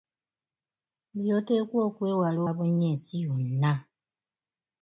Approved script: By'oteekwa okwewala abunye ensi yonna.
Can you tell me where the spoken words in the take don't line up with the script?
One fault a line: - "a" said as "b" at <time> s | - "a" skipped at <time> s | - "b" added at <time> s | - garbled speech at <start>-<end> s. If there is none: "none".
none